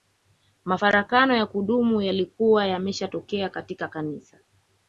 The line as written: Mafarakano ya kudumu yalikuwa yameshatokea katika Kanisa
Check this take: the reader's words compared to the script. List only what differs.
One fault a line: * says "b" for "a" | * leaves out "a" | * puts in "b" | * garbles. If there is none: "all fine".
all fine